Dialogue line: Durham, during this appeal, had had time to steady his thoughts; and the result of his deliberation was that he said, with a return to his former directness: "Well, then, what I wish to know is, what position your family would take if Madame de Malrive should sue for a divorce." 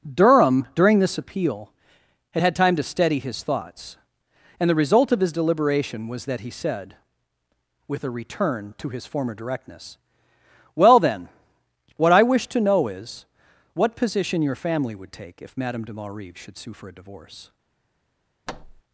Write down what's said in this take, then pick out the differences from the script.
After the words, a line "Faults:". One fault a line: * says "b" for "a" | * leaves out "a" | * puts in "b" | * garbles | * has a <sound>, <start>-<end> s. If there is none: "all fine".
Durham, during this appeal, had had time to steady his thoughts; and the result of his deliberation was that he said, with a return to his former directness: "Well, then, what I wish to know is, what position your family would take if Madame de Malrive should sue for a divorce."
Faults:
* has a thud, 18.5-18.8 s